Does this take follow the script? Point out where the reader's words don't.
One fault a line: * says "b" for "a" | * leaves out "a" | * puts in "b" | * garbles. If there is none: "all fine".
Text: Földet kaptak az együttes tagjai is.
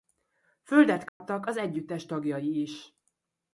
all fine